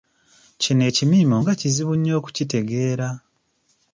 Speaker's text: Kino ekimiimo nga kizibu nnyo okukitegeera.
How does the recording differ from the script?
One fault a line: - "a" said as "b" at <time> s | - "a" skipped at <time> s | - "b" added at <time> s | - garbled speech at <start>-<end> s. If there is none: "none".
none